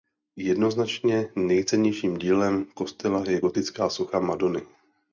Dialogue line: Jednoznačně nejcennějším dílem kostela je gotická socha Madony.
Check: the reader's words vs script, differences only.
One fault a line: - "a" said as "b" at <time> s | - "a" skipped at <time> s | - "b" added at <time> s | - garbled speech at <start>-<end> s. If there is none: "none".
none